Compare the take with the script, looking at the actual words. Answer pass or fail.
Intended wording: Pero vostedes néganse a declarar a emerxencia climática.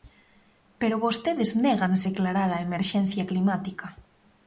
fail